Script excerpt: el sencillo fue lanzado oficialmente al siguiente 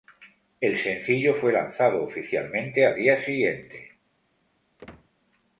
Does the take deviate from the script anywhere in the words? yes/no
yes